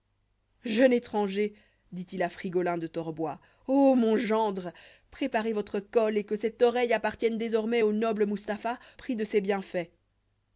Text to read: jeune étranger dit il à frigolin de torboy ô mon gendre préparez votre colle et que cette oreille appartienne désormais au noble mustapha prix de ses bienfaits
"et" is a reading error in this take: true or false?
false